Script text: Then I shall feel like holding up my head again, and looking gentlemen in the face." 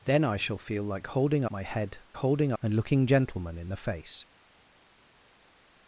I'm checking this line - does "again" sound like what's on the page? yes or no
no